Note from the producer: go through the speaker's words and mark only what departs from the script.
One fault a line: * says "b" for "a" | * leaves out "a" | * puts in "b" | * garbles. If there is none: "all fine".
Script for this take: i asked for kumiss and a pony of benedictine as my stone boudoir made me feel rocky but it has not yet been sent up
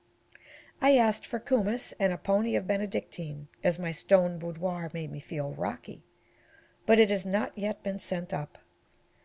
all fine